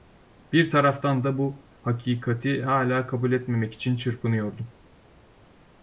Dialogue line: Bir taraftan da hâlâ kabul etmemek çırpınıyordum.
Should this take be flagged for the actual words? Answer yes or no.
yes